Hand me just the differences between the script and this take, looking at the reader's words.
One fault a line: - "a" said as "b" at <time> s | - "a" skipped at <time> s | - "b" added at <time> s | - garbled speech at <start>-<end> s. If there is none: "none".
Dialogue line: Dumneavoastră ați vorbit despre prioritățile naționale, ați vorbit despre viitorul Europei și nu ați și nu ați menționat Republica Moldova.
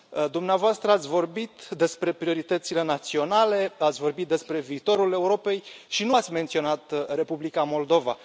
- "și nu ați" skipped at 6.3 s